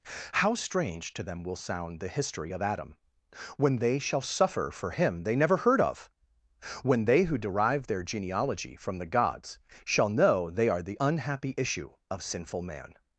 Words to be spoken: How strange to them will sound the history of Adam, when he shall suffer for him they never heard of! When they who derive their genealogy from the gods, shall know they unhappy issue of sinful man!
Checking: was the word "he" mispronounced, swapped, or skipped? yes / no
yes